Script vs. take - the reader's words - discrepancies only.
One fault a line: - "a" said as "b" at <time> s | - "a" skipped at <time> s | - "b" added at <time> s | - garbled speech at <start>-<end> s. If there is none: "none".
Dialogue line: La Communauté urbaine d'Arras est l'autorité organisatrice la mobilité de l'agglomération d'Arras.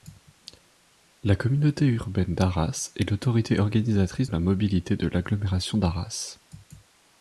none